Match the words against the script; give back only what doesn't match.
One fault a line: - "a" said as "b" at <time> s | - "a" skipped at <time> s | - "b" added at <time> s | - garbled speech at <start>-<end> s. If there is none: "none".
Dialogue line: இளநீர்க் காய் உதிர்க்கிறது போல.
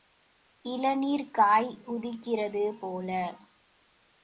none